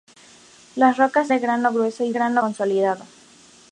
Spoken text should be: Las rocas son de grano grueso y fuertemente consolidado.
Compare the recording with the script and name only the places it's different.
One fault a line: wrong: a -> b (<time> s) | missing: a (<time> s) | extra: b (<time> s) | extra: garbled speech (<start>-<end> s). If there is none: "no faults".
missing: son (1.3 s)
wrong: fuertemente -> grano (2.1 s)